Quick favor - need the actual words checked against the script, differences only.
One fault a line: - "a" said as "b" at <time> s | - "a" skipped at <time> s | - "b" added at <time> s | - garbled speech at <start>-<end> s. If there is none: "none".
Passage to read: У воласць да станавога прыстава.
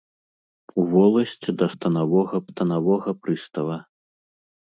- "станавога" added at 2.5 s